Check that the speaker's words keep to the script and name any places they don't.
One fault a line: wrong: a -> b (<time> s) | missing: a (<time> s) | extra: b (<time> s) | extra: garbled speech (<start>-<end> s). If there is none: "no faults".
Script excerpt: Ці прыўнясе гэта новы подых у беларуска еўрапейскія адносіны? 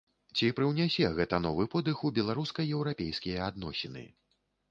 no faults